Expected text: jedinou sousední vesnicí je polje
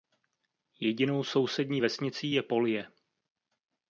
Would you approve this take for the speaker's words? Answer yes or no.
yes